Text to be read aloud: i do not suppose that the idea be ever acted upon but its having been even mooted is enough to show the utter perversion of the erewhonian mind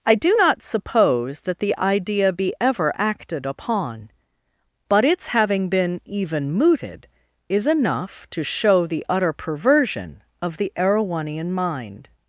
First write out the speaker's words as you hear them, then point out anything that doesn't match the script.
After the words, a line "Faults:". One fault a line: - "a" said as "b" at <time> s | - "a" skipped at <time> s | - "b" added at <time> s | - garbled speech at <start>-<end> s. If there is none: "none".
i do not suppose that the idea be ever acted upon but its having been even mooted is enough to show the utter perversion of the erewhonian mind
Faults:
none